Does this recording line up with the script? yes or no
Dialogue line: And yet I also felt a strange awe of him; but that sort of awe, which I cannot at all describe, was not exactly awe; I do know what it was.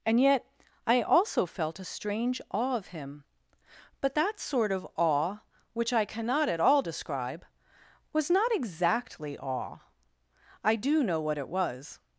yes